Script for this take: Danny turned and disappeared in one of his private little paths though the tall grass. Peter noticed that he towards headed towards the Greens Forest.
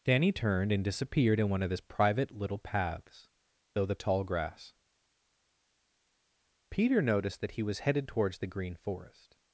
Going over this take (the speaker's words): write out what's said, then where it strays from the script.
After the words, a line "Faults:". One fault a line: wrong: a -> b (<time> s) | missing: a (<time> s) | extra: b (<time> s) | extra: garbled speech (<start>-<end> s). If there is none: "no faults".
Danny turned and disappeared in one of his private little paths though the tall grass. Peter noticed that he was headed towards the Green Forest.
Faults:
wrong: towards -> was (7.6 s)
wrong: Greens -> Green (8.5 s)